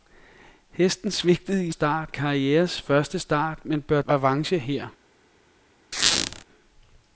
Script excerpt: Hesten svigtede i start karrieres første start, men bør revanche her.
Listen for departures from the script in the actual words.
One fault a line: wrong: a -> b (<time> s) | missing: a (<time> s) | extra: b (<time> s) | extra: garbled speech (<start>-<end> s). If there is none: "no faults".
no faults